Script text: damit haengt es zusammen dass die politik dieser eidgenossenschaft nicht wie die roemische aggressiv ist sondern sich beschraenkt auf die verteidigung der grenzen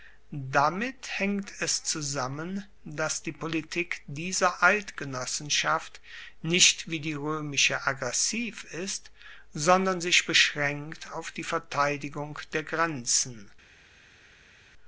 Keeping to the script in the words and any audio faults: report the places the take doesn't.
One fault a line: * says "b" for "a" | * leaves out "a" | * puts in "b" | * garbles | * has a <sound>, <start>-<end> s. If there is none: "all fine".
all fine